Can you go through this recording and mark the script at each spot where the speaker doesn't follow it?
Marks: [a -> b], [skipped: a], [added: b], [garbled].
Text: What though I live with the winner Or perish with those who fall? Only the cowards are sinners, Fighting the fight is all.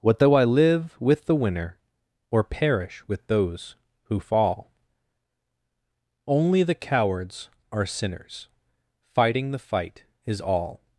What though I live with the winner Or perish with those who fall? Only the cowards are sinners, Fighting the fight is all.